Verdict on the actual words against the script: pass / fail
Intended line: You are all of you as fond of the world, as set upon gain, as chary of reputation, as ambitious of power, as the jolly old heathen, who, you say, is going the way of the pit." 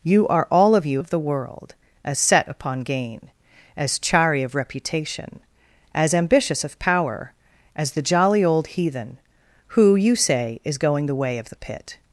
fail